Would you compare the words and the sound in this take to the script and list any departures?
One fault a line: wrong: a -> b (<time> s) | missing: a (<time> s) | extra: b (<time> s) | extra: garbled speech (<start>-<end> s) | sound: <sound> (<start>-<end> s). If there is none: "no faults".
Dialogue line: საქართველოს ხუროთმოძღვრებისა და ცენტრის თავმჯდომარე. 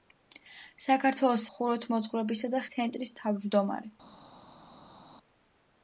no faults